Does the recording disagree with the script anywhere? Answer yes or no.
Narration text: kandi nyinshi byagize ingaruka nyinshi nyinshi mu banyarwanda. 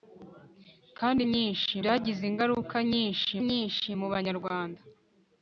no